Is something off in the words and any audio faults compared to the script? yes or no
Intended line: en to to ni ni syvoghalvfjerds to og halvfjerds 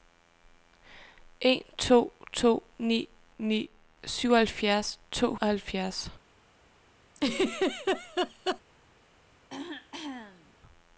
yes